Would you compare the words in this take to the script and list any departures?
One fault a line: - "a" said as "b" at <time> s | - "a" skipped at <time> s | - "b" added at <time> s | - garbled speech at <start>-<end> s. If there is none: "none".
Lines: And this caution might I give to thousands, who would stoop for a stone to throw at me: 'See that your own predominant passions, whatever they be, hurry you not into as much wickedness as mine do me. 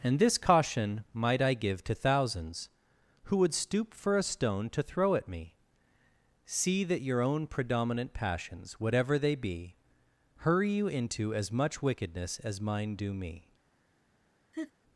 - "not" skipped at 10.9 s